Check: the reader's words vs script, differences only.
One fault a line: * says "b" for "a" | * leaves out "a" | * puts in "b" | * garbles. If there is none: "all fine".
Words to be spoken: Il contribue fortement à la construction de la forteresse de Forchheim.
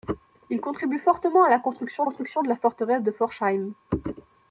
* puts in "construction"